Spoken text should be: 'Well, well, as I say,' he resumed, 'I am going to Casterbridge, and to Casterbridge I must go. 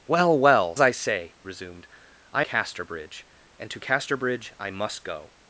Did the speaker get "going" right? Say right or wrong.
wrong